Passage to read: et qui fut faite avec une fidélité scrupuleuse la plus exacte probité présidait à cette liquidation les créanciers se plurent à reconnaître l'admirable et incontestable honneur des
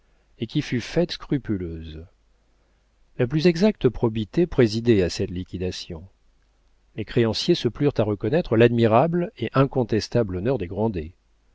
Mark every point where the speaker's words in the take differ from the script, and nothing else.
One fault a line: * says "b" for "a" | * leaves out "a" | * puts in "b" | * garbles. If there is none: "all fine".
* leaves out "avec une fidélité"